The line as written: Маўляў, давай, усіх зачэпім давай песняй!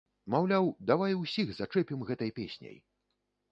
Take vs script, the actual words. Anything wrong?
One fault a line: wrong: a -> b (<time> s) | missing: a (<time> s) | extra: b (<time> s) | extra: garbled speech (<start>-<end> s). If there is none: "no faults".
wrong: давай -> гэтай (2.1 s)